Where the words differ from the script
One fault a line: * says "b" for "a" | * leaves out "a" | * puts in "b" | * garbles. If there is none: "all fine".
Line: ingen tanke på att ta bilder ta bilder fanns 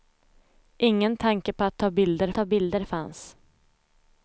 all fine